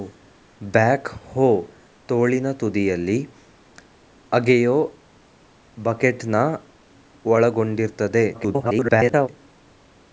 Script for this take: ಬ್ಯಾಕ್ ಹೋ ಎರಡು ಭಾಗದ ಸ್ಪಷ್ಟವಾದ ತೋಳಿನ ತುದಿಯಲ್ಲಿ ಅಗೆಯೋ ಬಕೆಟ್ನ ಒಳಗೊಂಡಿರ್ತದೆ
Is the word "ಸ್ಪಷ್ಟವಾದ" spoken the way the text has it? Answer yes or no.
no